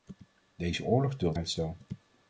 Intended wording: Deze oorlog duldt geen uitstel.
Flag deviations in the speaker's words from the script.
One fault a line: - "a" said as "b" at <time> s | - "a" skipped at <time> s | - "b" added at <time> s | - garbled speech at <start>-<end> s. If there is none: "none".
- "geen" skipped at 1.4 s